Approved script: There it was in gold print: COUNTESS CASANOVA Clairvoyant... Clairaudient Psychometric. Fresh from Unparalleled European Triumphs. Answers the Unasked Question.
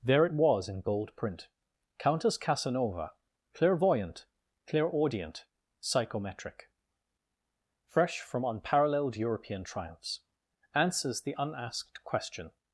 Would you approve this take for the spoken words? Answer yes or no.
yes